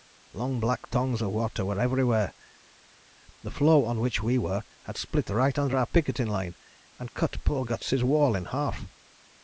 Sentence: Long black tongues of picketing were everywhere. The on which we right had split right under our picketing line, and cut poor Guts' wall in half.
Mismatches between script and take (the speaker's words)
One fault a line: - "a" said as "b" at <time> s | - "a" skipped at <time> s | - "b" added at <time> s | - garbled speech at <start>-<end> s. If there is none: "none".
- "picketing" said as "water" at 1.3 s
- "floe" added at 3.5 s
- "right" said as "were" at 4.4 s